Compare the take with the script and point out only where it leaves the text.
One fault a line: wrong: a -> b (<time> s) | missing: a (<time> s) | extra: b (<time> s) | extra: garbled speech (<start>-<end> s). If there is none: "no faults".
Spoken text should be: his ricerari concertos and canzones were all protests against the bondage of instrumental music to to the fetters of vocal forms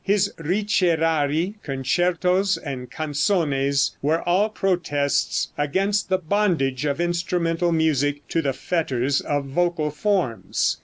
missing: to (8.4 s)